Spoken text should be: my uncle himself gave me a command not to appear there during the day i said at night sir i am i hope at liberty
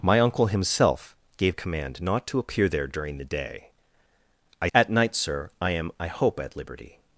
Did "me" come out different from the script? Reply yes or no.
yes